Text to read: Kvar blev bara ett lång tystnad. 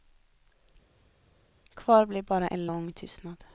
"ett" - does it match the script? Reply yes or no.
no